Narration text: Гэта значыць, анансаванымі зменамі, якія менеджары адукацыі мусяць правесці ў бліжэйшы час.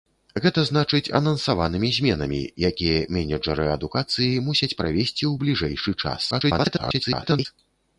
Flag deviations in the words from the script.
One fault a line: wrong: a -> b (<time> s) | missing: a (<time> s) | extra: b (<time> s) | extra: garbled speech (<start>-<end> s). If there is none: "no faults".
extra: garbled speech (6.3-7.5 s)